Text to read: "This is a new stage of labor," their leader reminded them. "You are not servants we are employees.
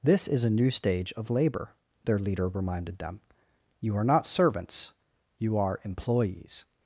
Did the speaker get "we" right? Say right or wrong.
wrong